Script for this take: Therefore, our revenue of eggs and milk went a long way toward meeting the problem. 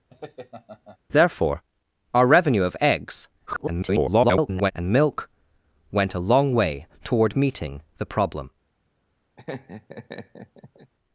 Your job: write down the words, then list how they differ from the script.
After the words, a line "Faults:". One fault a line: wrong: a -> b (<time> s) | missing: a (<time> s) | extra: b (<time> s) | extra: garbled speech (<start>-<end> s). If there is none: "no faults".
Therefore, our revenue of eggs [garbled] and milk went a long way toward meeting the problem.
Faults:
extra: garbled speech (3.5-4.7 s)